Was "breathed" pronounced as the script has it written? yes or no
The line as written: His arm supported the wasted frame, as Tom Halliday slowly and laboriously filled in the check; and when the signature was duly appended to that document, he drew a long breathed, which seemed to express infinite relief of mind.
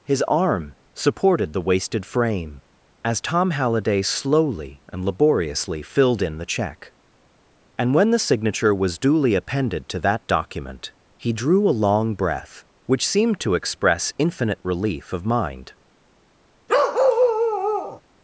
no